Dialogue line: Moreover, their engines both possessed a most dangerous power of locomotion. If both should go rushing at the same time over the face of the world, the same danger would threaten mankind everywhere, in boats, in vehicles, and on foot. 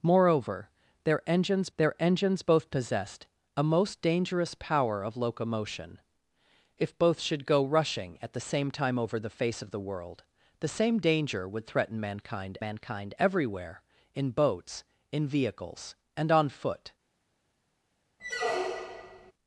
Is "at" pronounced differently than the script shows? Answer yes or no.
no